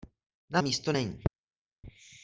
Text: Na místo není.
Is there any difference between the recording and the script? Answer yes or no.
no